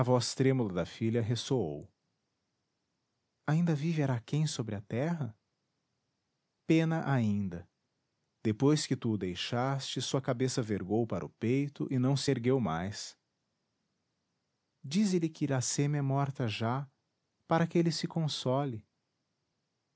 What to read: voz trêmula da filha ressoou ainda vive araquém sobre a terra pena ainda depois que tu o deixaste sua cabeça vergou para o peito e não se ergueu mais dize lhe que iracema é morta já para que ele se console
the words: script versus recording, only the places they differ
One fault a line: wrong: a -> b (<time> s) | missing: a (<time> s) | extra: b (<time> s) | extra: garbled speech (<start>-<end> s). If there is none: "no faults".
no faults